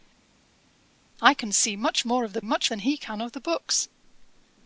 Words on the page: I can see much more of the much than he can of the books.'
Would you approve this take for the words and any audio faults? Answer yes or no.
yes